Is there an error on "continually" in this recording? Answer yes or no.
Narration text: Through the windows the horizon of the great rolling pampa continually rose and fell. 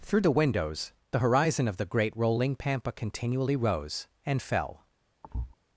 no